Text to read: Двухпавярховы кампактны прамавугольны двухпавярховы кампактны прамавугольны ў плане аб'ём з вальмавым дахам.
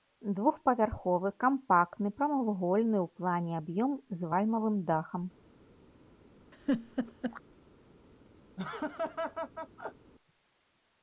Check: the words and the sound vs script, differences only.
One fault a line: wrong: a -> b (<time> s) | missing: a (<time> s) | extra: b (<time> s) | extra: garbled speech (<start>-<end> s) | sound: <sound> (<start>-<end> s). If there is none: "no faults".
missing: двухпавярховы кампактны прамавугольны (3.0 s)
sound: laugh (6.5-7.4 s)
sound: laugh (8.6-10.1 s)